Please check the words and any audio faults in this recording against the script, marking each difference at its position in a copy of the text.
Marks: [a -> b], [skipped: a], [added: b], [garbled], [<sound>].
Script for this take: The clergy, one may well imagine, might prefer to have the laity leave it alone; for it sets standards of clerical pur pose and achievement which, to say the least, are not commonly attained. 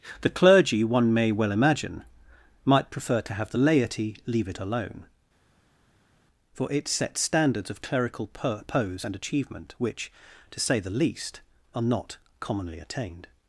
The clergy, one may well imagine, might prefer to have the laity leave it alone; for it sets standards of clerical [skipped: pur] pose and achievement which, to say the least, are not commonly attained.